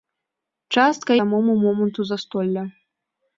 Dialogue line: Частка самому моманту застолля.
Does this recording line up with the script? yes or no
yes